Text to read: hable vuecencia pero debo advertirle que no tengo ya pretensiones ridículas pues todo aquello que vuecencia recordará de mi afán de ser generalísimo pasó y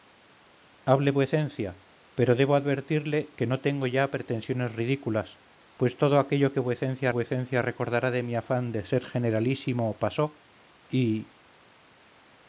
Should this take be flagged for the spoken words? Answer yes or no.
yes